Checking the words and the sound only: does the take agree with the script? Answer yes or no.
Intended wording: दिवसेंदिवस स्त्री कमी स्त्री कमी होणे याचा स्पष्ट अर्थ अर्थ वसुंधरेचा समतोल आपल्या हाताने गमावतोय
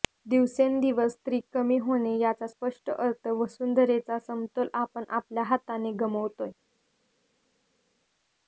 no